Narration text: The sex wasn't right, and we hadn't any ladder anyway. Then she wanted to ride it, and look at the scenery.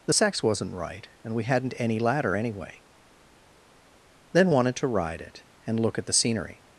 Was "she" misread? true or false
true